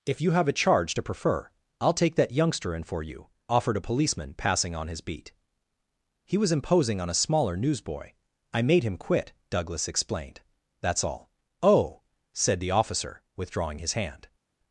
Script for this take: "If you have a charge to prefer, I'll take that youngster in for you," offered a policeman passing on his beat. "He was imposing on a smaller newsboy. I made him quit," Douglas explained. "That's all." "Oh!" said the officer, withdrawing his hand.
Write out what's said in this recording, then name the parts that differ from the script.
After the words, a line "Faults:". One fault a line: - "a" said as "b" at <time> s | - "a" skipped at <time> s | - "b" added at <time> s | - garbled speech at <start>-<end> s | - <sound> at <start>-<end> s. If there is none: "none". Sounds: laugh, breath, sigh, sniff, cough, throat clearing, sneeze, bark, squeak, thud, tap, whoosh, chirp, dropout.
"If you have a charge to prefer, I'll take that youngster in for you," offered a policeman passing on his beat. "He was imposing on a smaller newsboy. I made him quit," Douglas explained. "That's all." "Oh!" said the officer, withdrawing his hand.
Faults:
none